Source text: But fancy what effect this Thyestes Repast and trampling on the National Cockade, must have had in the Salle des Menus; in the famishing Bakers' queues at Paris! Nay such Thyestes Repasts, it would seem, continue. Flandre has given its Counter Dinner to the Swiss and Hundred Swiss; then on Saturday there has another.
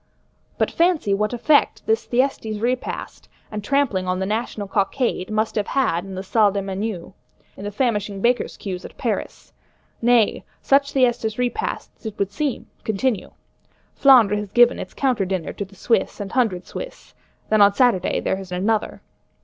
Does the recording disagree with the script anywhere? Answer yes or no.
no